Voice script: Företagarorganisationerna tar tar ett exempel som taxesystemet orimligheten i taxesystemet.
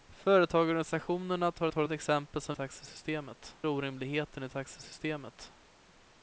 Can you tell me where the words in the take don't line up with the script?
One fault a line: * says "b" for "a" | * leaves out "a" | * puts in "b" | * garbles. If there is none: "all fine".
all fine